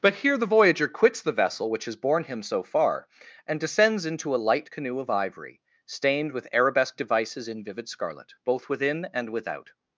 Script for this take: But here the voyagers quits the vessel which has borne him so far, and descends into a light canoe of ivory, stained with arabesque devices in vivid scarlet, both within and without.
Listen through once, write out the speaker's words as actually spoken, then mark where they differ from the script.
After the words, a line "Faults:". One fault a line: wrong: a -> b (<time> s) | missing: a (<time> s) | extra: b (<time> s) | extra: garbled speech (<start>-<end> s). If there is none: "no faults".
But here the voyager quits the vessel which has borne him so far, and descends into a light canoe of ivory, stained with arabesque devices in vivid scarlet, both within and without.
Faults:
wrong: voyagers -> voyager (0.5 s)